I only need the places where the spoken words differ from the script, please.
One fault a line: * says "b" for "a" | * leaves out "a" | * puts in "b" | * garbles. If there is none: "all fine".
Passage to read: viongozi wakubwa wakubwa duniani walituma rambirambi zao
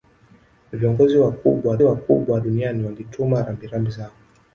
all fine